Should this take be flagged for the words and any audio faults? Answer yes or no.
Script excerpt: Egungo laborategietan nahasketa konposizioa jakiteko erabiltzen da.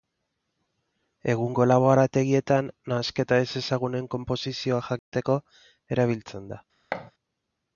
yes